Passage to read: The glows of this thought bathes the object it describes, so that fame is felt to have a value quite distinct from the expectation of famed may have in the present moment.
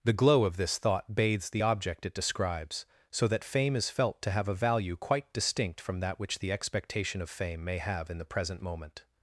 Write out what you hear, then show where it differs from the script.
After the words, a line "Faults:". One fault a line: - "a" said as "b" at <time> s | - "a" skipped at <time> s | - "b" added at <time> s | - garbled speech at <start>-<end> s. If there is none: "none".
The glow of this thought bathes the object it describes, so that fame is felt to have a value quite distinct from that which the expectation of fame may have in the present moment.
Faults:
- "glows" said as "glow" at 0.1 s
- "that which" added at 6.0 s
- "famed" said as "fame" at 7.3 s